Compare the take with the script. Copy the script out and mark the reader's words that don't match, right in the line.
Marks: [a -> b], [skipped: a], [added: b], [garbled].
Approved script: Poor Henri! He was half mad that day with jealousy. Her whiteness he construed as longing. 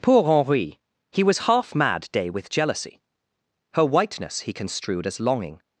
Poor Henri! He was half mad [skipped: that] day with jealousy. Her whiteness he construed as longing.